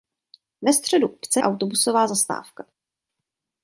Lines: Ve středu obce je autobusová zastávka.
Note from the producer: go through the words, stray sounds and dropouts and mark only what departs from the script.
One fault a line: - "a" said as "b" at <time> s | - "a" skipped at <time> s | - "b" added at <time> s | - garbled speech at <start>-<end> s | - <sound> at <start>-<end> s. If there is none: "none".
- "je" skipped at 1.4 s